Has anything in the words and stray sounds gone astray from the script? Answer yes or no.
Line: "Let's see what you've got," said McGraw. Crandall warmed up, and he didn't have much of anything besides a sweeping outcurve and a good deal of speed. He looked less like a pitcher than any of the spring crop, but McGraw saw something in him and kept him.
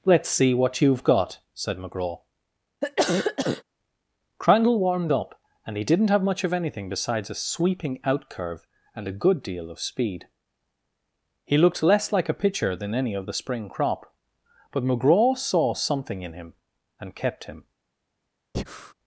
yes